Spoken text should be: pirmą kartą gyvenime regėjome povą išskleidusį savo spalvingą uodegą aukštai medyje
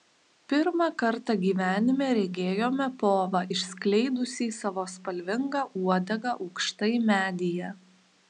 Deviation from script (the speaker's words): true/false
false